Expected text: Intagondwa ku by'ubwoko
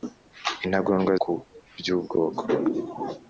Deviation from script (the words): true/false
false